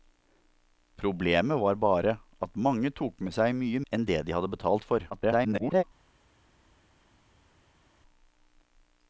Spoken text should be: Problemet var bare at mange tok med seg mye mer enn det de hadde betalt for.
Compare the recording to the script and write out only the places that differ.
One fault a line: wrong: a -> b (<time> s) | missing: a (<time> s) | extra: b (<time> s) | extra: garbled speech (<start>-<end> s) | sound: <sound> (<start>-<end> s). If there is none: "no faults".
missing: mer (3.8 s)
extra: garbled speech (5.1-5.8 s)